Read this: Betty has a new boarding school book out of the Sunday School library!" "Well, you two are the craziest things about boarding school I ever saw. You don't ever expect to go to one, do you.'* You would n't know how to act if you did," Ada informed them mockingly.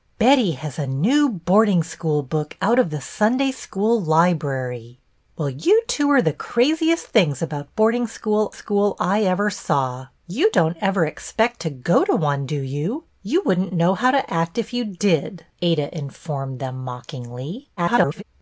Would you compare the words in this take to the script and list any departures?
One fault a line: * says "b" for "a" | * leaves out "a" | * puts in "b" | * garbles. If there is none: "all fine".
* puts in "school"
* garbles